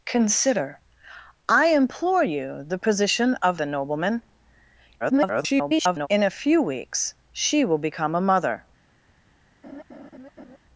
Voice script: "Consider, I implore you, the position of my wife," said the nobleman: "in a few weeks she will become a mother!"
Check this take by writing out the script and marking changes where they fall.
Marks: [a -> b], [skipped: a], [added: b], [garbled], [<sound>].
"Consider, I implore you, the position of [skipped: my wife," said] the nobleman: [garbled] "in a few weeks she will become a mother!" [laugh]